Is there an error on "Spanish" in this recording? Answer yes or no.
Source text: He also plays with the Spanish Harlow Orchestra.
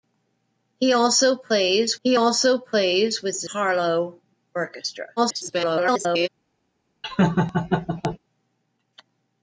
yes